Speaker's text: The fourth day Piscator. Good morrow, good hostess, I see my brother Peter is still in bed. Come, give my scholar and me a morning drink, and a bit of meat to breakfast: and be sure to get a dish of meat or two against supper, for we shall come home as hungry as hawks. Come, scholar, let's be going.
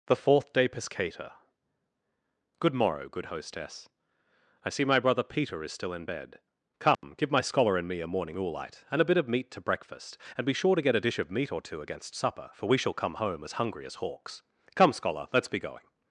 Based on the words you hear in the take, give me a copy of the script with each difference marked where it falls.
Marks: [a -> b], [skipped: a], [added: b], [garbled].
The fourth day Piscator. Good morrow, good hostess, I see my brother Peter is still in bed. Come, give my scholar and me a morning [drink, -> oolite] and a bit of meat to breakfast: and be sure to get a dish of meat or two against supper, for we shall come home as hungry as hawks. Come, scholar, let's be going.